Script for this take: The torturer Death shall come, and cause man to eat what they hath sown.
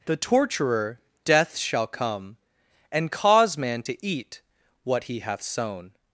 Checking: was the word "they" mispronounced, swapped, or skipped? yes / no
yes